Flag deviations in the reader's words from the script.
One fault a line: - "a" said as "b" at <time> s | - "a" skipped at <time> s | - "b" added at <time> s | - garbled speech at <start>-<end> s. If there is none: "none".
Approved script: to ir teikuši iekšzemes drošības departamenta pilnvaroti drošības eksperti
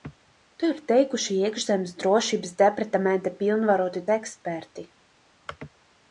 - "drošības" skipped at 4.0 s